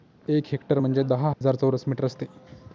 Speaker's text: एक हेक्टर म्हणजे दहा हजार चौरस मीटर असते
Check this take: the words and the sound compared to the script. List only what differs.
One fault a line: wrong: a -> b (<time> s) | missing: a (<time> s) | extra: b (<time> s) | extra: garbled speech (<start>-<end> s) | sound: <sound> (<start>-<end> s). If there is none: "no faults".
sound: dropout (1.3-1.4 s)